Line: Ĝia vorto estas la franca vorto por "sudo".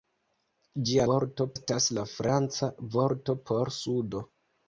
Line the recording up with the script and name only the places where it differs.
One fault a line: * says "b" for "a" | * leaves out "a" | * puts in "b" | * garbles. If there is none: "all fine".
all fine